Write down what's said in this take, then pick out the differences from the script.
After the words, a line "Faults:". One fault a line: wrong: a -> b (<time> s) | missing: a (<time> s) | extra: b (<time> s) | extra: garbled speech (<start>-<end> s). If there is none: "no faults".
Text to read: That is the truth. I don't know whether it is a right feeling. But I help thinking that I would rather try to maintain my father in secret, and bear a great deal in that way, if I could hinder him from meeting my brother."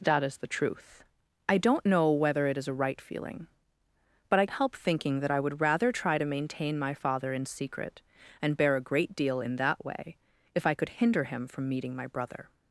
That is the truth. I don't know whether it is a right feeling. But I help thinking that I would rather try to maintain my father in secret, and bear a great deal in that way, if I could hinder him from meeting my brother."
Faults:
no faults